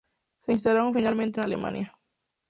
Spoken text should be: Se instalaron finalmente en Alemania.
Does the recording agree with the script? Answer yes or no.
yes